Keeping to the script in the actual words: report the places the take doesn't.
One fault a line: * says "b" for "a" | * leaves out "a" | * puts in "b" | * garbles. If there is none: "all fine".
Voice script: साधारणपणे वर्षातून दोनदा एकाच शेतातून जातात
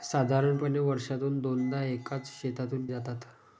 all fine